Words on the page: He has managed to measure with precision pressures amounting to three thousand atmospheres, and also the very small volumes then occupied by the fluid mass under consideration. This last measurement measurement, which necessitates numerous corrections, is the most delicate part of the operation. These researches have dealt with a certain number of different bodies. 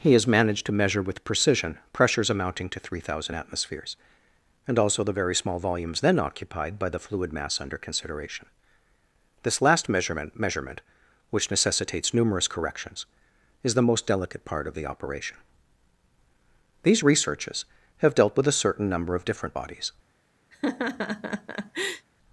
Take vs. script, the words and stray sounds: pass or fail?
fail